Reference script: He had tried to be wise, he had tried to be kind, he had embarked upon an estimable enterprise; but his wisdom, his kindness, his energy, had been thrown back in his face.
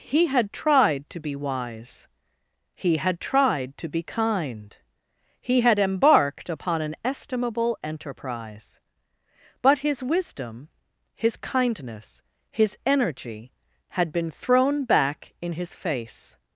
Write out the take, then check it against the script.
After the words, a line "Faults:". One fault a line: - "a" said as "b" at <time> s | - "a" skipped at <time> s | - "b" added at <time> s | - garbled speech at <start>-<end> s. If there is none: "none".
He had tried to be wise, he had tried to be kind, he had embarked upon an estimable enterprise; but his wisdom, his kindness, his energy, had been thrown back in his face.
Faults:
none